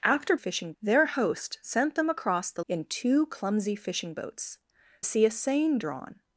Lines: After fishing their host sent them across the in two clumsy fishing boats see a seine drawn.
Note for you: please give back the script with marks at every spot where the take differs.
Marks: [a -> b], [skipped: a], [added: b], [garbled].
After fishing their host sent them across the in two clumsy fishing boats see a seine drawn.